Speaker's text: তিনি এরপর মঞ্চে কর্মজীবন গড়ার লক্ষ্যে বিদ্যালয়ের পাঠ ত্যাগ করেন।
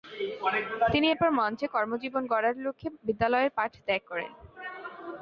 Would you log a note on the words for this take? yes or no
no